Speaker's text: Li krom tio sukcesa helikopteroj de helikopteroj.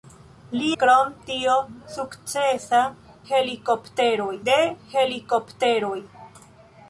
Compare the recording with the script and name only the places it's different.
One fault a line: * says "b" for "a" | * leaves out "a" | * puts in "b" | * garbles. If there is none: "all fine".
all fine